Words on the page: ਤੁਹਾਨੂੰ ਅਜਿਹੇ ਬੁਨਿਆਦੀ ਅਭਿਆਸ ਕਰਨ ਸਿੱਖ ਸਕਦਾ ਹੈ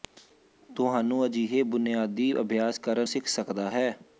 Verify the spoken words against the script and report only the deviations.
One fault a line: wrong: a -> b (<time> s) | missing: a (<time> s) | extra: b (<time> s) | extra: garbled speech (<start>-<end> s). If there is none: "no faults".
no faults